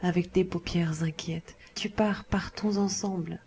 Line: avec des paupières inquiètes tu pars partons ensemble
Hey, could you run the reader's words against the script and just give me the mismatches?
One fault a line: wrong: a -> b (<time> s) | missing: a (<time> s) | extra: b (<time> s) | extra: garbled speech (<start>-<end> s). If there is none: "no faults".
no faults